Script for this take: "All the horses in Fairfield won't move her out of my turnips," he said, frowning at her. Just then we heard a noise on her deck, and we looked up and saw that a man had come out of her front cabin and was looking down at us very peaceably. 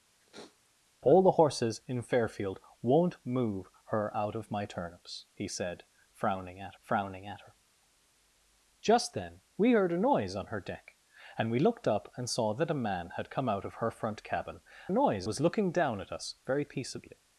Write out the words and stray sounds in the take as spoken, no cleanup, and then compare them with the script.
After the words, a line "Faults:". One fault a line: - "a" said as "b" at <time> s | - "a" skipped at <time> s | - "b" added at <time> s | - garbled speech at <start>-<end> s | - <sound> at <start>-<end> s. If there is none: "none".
"All the horses in Fairfield won't move her out of my turnips," he said, frowning at frowning at her. Just then we heard a noise on her deck, and we looked up and saw that a man had come out of her front cabin noise was looking down at us very peaceably.
Faults:
- sniff at 0.2-0.7 s
- "frowning at" added at 6.8 s
- "and" said as "noise" at 14.9 s